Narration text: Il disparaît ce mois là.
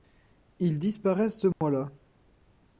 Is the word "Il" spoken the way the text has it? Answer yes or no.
yes